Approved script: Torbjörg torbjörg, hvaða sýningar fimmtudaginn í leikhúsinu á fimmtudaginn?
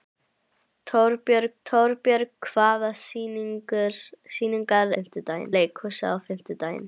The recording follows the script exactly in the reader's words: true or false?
true